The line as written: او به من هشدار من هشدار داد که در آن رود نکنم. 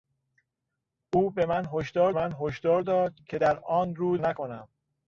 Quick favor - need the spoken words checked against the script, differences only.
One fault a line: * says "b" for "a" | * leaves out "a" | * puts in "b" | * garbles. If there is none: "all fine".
all fine